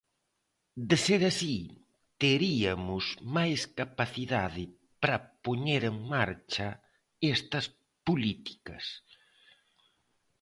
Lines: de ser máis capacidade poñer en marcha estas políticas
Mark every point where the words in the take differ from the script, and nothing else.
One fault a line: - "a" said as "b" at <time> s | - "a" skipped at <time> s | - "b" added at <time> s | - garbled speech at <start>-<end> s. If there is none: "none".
- "así teriamos" added at 1.3 s
- "para" added at 5.0 s